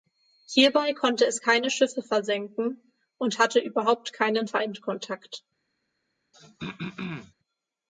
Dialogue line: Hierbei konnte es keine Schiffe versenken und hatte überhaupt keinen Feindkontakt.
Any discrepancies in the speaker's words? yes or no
no